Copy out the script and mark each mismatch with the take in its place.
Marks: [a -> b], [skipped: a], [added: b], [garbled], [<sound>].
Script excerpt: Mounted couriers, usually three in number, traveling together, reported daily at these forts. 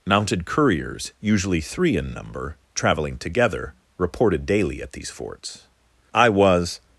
Mounted couriers, usually three in number, traveling together, reported daily at these forts. [added: I was]